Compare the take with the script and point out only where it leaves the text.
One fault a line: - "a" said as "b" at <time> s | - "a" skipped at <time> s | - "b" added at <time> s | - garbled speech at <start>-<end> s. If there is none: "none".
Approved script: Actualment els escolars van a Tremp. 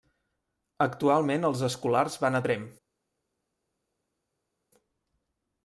none